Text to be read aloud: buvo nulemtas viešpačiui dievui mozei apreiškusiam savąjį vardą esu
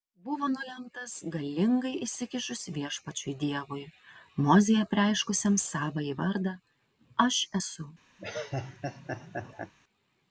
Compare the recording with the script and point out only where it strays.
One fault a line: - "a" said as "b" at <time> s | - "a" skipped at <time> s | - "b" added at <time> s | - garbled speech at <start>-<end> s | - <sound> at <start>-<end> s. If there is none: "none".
- "galingai įsikišus" added at 1.3 s
- "aš" added at 7.3 s
- laugh at 8.2-9.7 s